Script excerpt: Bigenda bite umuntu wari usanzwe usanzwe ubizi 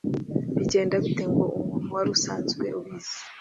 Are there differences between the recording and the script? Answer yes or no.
yes